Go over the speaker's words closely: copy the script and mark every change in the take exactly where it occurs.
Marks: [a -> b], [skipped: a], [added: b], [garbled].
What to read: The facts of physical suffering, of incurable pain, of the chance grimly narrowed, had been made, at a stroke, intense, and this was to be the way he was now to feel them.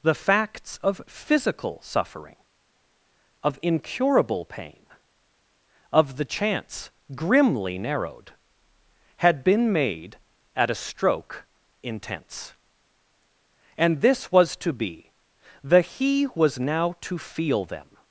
The facts of physical suffering, of incurable pain, of the chance grimly narrowed, had been made, at a stroke, intense, and this was to be the [skipped: way] he was now to feel them.